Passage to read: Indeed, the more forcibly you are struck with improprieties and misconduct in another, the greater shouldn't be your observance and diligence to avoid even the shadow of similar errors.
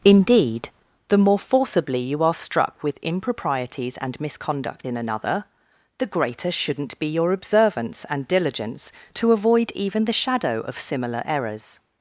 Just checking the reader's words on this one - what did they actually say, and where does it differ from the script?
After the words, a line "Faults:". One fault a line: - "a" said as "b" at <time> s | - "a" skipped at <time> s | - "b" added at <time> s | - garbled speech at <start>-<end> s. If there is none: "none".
Indeed, the more forcibly you are struck with improprieties and misconduct in another, the greater shouldn't be your observance and diligence to avoid even the shadow of similar errors.
Faults:
none